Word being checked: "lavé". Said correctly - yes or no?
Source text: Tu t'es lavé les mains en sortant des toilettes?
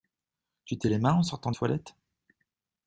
no